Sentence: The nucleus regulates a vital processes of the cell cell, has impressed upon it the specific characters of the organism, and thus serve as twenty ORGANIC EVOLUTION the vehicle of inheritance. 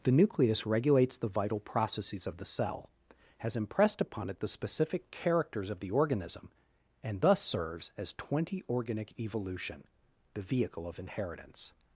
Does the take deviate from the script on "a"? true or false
true